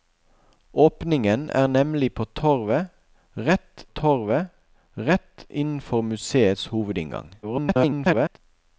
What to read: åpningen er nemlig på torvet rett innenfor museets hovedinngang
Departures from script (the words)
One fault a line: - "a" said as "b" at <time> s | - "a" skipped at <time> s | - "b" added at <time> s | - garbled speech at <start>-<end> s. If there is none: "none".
- "torvet rett" added at 3.8 s
- garbled speech at 7.4-8.4 s